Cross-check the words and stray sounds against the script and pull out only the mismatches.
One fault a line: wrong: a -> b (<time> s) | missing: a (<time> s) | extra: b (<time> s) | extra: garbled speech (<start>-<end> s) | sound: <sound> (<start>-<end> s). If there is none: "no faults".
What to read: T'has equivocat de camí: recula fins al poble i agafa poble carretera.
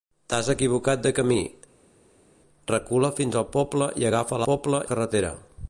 no faults